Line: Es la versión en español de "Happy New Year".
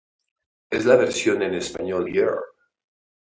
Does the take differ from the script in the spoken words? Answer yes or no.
yes